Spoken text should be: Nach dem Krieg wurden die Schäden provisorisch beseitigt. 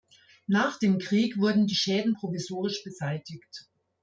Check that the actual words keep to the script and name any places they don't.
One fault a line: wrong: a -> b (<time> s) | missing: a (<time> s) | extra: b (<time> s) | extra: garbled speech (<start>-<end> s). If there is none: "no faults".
no faults